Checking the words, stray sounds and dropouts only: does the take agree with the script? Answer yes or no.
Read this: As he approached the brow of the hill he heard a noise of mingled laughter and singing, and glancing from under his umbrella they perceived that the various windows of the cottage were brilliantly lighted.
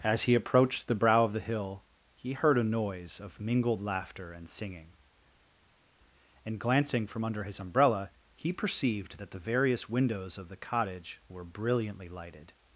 no